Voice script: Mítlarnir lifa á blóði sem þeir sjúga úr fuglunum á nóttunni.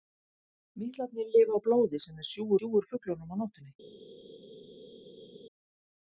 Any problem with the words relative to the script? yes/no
yes